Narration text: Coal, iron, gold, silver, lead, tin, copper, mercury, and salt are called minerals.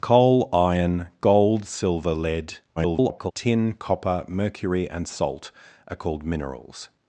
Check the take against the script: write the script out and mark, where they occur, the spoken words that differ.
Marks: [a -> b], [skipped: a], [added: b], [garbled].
Coal, iron, gold, silver, lead, [garbled] tin, copper, mercury, and salt are called minerals.